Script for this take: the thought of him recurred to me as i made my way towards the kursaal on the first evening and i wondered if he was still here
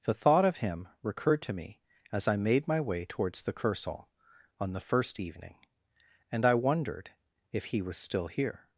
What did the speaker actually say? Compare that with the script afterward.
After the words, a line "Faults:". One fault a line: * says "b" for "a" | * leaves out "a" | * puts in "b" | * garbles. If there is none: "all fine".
the thought of him recurred to me as i made my way towards the kursaal on the first evening and i wondered if he was still here
Faults:
all fine